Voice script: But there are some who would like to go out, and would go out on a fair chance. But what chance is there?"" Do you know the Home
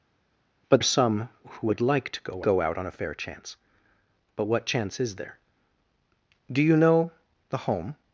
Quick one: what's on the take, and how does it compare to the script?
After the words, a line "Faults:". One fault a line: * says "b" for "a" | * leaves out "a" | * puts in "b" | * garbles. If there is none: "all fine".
But are some who would like to go go out on a fair chance. But what chance is there?"" Do you know the Home
Faults:
* leaves out "there"
* leaves out "out and would"